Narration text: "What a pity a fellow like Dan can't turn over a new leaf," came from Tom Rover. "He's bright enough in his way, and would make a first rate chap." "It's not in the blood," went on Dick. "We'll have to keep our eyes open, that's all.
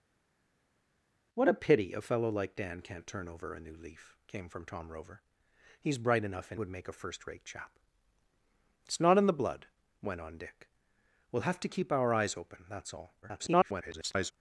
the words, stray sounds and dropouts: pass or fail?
fail